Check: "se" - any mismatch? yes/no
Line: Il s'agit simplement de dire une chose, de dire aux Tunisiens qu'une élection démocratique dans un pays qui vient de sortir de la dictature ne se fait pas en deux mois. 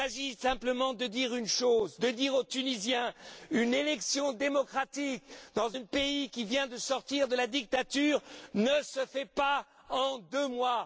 no